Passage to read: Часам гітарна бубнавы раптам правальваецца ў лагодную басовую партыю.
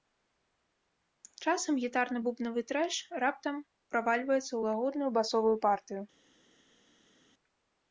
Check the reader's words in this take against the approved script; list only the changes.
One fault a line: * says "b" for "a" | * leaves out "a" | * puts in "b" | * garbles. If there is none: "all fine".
* puts in "трэш"